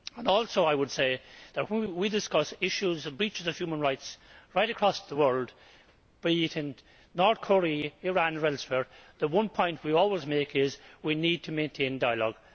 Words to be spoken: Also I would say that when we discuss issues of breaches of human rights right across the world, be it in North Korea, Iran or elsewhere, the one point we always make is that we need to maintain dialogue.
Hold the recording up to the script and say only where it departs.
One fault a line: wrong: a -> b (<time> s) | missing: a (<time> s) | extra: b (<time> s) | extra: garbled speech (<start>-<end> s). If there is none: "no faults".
no faults